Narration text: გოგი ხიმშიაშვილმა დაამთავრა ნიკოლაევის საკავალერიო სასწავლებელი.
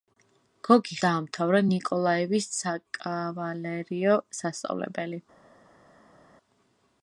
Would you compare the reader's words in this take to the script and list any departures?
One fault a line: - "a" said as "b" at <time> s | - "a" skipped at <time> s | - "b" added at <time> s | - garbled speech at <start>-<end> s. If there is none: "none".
- "ხიმშიაშვილმა" skipped at 0.9 s